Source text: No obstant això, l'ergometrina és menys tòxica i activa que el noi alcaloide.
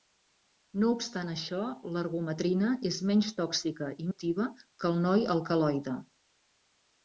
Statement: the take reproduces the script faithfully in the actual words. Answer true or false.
true